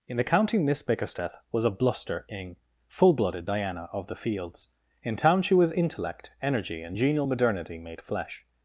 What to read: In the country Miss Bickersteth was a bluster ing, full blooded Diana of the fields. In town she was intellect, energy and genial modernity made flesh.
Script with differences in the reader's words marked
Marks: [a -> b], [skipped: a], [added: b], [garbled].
In the [country -> county] Miss Bickersteth was a bluster ing, full blooded Diana of the fields. In town she was intellect, energy and genial modernity made flesh.